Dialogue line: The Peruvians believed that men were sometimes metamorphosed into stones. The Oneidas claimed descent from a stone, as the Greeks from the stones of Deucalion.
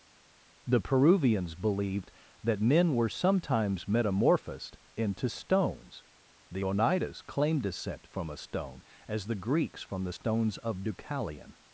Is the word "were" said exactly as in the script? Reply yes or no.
yes